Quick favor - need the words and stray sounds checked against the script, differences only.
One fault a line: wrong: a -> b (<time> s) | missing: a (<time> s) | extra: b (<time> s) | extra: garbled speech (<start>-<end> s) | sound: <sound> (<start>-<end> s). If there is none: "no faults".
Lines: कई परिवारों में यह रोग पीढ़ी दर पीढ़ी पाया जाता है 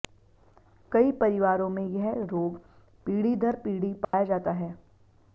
sound: dropout (4.0-4.1 s)